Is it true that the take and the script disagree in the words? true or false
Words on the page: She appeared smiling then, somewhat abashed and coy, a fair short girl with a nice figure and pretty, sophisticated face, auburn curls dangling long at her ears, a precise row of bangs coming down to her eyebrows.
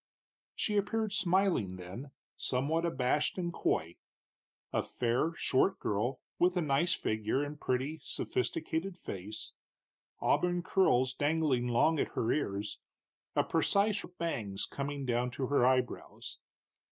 true